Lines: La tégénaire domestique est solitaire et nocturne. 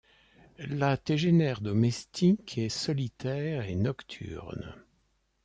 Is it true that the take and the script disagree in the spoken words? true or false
false